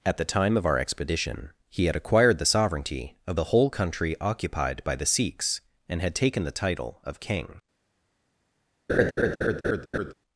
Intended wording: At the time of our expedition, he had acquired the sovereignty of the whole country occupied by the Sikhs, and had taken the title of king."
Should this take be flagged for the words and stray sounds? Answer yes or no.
yes